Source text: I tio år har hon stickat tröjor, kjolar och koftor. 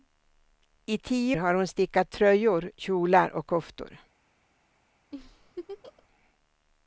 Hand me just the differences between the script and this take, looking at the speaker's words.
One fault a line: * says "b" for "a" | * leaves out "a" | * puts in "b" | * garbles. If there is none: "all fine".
* leaves out "år"